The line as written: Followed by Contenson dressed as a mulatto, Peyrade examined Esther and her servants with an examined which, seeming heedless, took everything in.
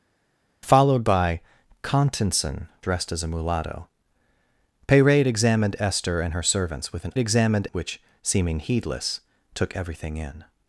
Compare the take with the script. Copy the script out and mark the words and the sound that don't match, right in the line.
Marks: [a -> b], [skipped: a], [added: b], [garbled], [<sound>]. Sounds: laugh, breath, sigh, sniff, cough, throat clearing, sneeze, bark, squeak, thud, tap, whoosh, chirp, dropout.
Followed by Contenson dressed as a mulatto, Peyrade examined Esther and her servants with an examined which, seeming heedless, took everything in.